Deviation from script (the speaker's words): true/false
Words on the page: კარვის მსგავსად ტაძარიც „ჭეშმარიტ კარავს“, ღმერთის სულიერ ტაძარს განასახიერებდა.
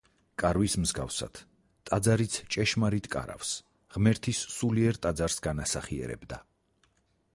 false